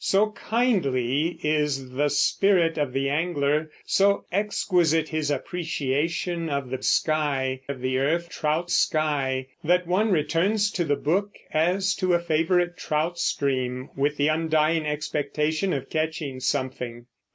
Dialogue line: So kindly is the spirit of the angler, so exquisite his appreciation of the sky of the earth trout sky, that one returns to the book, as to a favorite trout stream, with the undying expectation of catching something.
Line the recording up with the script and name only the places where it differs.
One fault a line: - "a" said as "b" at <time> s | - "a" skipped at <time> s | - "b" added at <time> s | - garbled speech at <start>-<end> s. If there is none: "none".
none